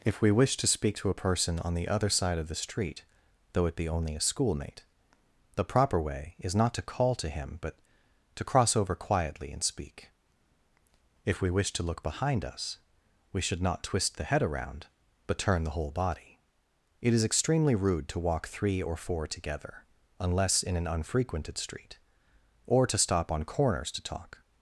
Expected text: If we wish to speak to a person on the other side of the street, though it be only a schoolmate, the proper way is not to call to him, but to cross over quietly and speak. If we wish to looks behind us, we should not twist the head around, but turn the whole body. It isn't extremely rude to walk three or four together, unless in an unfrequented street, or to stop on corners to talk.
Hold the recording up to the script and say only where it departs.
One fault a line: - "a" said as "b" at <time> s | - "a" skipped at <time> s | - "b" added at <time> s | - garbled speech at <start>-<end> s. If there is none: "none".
- "looks" said as "look" at 11.8 s
- "isn't" said as "is" at 17.1 s